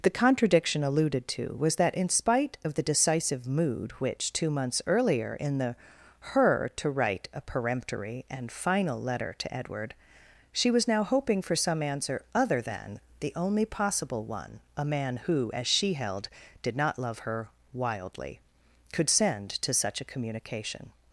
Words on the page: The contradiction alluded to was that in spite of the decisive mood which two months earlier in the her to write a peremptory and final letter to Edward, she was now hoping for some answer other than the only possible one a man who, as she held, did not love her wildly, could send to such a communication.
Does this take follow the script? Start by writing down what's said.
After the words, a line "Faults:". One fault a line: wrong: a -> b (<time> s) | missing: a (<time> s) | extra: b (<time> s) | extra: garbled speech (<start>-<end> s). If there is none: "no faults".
The contradiction alluded to was that in spite of the decisive mood which two months earlier in the her to write a peremptory and final letter to Edward, she was now hoping for some answer other than the only possible one a man who, as she held, did not love her wildly, could send to such a communication.
Faults:
no faults